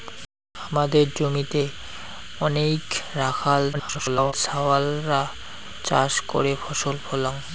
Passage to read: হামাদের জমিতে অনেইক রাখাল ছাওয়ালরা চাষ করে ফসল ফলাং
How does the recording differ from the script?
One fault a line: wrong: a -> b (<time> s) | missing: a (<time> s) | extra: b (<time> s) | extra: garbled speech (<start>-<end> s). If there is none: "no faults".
extra: garbled speech (3.7-4.3 s)